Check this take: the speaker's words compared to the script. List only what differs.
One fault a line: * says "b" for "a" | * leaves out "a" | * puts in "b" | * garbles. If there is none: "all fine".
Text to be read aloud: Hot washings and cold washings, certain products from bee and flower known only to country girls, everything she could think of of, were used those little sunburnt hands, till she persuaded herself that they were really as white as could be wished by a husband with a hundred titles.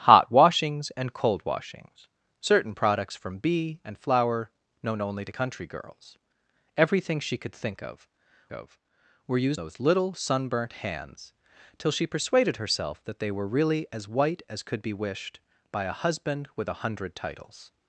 all fine